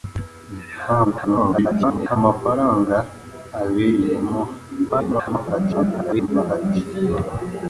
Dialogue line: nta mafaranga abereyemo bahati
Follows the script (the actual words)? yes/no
no